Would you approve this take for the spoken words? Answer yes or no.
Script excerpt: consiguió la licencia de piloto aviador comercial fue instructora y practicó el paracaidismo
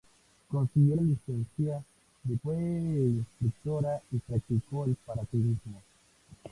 no